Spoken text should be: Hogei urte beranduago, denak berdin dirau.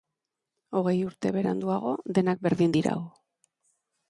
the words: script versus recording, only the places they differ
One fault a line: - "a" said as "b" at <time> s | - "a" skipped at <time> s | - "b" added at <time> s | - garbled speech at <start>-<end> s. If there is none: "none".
none